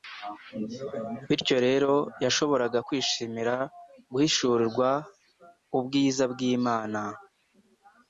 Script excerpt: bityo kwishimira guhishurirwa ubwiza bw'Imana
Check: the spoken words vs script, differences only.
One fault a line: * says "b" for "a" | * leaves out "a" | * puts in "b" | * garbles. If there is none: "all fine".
* puts in "rero yashoboraga"